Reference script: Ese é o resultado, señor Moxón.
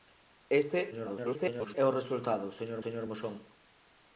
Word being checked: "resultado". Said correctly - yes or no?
yes